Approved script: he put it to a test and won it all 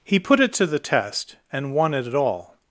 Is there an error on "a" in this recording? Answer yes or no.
yes